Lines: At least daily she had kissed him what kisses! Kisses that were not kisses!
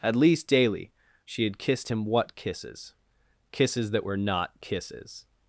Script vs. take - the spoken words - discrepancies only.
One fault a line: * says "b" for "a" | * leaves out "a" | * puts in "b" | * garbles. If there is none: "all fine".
all fine